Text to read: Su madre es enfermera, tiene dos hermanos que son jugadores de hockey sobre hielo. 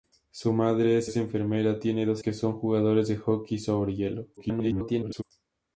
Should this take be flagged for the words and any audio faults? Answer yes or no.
yes